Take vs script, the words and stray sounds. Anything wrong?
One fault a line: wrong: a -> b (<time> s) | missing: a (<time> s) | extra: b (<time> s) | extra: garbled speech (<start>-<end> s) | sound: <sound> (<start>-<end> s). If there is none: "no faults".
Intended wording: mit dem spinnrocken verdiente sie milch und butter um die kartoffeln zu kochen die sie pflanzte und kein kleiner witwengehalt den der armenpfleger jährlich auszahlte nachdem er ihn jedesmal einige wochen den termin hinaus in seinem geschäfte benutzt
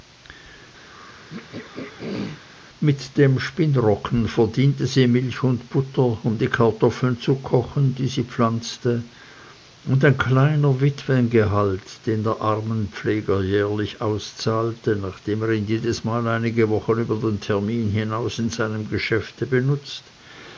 sound: throat clearing (0.9-2.4 s)
wrong: kein -> ein (10.0 s)
extra: über (17.0 s)